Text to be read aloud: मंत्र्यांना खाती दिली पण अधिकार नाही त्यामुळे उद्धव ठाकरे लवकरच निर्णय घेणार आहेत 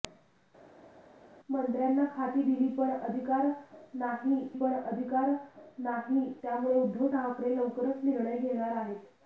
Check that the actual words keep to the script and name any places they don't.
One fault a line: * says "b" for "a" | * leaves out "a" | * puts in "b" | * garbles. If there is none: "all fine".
* puts in "पण अधिकार नाही"